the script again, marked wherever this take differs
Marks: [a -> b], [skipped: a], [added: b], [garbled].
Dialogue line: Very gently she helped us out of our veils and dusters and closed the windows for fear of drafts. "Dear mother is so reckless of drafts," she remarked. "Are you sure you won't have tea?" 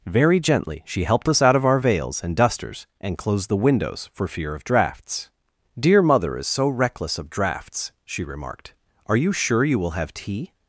Very gently she helped us out of our veils and dusters and closed the windows for fear of drafts. "Dear mother is so reckless of drafts," she remarked. "Are you sure you [won't -> will] have tea?"